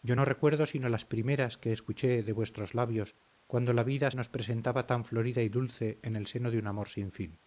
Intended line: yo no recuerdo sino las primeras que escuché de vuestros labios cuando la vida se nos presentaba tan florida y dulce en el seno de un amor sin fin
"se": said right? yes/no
no